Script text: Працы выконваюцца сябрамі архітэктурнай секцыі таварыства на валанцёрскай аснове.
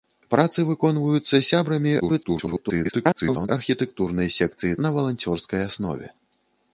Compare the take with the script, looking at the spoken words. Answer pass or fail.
fail